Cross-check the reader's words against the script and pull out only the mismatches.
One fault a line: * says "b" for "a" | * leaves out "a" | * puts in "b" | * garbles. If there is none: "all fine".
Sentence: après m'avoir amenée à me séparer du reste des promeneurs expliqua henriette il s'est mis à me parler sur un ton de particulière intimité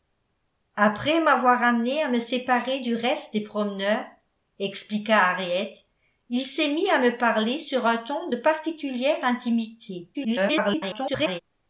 * garbles